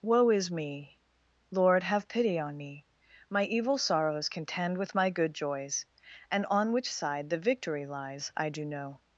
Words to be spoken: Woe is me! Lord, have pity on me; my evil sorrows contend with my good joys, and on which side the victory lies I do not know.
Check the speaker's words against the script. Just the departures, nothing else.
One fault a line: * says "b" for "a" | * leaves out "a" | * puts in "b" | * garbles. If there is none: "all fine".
* leaves out "not"